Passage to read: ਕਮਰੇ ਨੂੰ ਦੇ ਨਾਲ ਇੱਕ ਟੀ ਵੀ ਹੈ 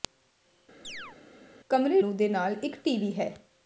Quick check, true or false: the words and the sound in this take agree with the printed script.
false